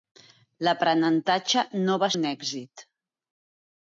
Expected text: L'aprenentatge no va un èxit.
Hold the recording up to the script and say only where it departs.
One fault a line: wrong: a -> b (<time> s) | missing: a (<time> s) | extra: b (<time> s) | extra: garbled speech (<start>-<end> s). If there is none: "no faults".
no faults